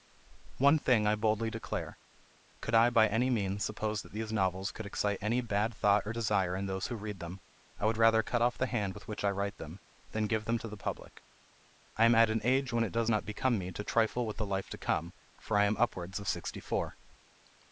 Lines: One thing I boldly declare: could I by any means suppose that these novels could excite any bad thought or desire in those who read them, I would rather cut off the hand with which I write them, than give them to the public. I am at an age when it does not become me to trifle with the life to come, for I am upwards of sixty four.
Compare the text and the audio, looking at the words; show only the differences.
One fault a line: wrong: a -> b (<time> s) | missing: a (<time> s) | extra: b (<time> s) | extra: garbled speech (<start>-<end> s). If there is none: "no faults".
no faults